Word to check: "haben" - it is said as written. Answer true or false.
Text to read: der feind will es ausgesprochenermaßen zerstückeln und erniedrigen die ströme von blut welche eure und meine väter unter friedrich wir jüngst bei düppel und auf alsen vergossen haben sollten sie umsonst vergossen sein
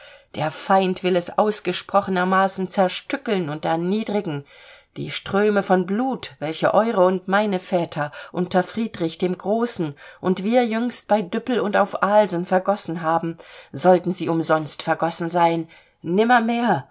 true